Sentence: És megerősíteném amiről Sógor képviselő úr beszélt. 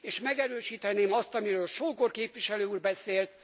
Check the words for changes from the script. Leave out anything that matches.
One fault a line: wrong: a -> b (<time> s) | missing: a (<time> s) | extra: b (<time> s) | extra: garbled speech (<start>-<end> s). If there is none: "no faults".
extra: azt (1.1 s)